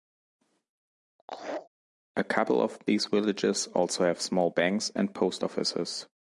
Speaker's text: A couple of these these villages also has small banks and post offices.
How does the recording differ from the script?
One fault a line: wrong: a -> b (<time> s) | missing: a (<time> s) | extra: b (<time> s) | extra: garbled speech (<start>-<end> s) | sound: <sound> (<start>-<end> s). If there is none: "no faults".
sound: laugh (1.2-1.7 s)
missing: these (3.1 s)
wrong: has -> have (4.0 s)